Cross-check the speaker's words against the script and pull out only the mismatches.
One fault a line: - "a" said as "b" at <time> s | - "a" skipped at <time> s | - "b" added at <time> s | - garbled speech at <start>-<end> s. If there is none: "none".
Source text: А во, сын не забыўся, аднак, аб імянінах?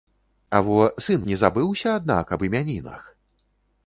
none